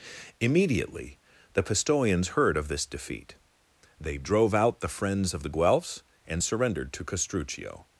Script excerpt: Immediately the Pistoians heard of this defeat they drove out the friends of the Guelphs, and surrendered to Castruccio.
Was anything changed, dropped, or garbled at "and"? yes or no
no